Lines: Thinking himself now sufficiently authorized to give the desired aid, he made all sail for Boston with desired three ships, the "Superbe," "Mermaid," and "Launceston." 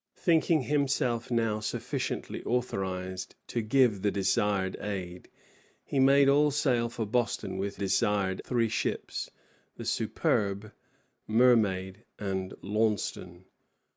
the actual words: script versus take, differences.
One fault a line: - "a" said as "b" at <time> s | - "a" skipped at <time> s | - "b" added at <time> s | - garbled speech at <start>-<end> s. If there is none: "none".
none